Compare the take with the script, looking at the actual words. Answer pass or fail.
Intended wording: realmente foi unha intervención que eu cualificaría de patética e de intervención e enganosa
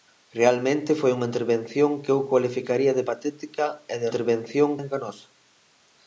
pass